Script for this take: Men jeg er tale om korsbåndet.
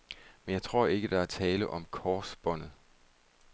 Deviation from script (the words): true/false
true